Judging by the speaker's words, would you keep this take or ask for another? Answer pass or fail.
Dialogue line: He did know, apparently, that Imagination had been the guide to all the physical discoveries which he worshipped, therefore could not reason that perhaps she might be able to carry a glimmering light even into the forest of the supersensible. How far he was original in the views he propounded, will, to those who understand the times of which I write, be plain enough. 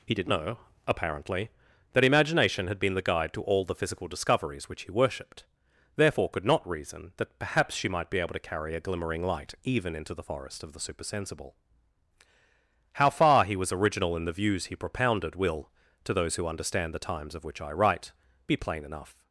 pass